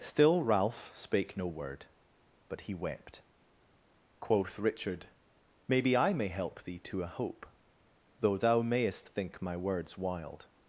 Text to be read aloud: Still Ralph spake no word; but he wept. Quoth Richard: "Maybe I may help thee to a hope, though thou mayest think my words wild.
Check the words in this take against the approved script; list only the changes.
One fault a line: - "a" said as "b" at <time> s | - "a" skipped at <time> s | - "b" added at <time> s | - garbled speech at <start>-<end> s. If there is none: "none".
none